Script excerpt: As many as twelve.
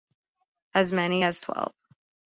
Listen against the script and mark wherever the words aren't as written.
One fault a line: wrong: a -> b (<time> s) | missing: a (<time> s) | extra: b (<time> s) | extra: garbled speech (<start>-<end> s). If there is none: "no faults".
no faults